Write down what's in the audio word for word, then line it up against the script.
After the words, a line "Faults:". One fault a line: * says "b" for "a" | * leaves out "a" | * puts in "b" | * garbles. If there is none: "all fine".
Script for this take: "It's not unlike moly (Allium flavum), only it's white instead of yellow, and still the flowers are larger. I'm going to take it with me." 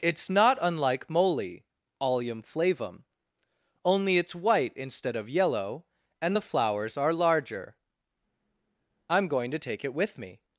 "It's not unlike moly (Allium flavum), only it's white instead of yellow, and the flowers are larger. I'm going to take it with me."
Faults:
* leaves out "still"